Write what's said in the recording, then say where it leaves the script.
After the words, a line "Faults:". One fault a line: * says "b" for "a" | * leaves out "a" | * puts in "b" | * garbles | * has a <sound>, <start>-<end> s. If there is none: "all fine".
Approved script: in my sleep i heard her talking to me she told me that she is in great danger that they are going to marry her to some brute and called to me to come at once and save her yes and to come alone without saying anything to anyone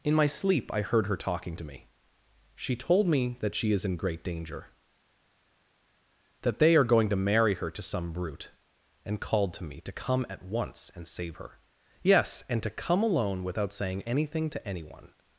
in my sleep i heard her talking to me she told me that she is in great danger that they are going to marry her to some brute and called to me to come at once and save her yes and to come alone without saying anything to anyone
Faults:
all fine